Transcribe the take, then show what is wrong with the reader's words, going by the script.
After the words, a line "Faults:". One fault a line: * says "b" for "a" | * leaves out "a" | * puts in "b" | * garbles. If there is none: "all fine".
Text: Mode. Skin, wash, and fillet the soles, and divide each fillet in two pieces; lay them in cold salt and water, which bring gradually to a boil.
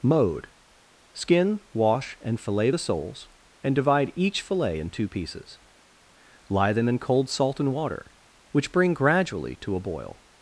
Mode. Skin, wash, and fillet the soles, and divide each fillet in two pieces; lie them in cold salt and water, which bring gradually to a boil.
Faults:
* says "lie" for "lay"